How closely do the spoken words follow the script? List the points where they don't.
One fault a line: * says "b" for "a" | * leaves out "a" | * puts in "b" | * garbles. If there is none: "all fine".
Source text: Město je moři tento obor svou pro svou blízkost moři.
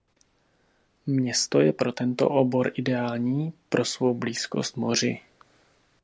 * says "pro" for "moři"
* says "ideální" for "svou"